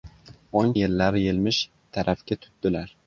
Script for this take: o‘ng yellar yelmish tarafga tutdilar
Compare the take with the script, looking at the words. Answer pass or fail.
pass